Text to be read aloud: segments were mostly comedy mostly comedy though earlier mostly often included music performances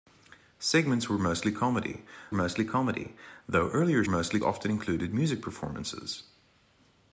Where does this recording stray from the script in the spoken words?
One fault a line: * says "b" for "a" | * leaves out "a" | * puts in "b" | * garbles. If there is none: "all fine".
all fine